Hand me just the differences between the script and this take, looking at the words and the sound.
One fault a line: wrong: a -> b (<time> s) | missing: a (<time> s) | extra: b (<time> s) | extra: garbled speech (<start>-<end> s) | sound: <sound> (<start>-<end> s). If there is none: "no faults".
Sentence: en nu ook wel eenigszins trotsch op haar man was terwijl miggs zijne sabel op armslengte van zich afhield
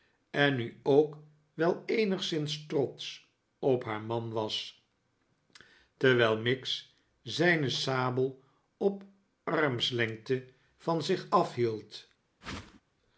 sound: whoosh (12.4-12.8 s)